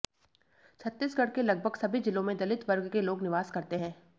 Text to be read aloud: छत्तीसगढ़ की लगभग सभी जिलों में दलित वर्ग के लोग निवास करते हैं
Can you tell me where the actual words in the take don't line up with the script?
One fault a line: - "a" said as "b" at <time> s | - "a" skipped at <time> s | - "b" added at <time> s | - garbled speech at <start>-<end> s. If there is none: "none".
- "की" said as "के" at 1.3 s